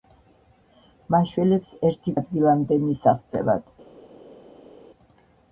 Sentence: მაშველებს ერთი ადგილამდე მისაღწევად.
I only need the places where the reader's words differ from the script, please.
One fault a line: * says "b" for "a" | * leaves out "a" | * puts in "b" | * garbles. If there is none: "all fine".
all fine